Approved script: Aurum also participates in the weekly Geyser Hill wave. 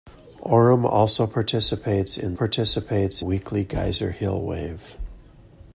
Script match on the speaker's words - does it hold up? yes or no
no